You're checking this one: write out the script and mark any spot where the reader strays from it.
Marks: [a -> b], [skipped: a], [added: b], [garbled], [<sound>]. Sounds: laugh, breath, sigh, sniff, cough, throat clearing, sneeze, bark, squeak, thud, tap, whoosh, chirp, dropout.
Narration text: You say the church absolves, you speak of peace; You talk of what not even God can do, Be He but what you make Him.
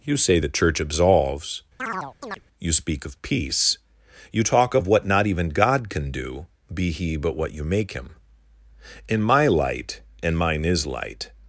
You say the church absolves, [chirp] you speak of peace; You talk of what not even God can do, Be He but what you make Him. [added: In my light And mine is light]